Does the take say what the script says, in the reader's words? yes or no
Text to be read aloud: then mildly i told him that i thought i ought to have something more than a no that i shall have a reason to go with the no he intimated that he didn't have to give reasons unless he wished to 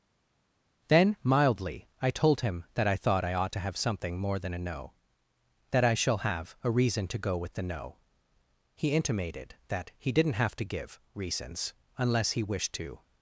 yes